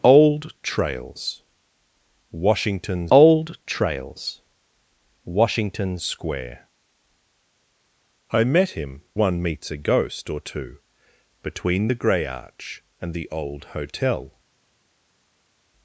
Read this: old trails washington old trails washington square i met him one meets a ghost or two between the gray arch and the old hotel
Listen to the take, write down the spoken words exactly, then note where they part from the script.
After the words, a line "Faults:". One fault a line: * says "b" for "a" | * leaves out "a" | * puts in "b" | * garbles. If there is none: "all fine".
old trails washington old trails washington square i met him one meets a ghost or two between the gray arch and the old hotel
Faults:
all fine